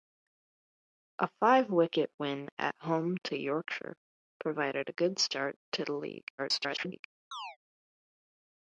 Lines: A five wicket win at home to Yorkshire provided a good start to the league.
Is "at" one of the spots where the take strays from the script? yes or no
no